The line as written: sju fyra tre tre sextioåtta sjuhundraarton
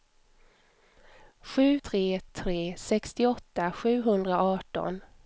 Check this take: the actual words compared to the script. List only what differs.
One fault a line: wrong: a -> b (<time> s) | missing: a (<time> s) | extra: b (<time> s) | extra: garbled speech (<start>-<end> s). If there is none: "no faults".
missing: fyra (1.8 s)